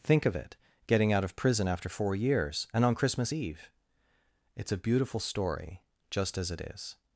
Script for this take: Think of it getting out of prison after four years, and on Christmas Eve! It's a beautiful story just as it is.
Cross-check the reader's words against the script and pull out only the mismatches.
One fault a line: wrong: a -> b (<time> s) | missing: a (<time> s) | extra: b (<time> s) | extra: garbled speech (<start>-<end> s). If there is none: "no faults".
no faults